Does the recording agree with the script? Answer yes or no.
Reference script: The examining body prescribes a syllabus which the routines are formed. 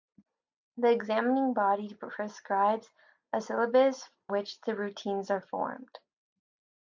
yes